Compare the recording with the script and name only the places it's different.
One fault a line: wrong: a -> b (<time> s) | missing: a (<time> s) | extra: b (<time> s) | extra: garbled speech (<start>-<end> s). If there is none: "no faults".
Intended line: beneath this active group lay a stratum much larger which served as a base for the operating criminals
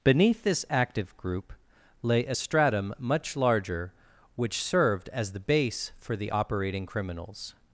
wrong: a -> the (5.3 s)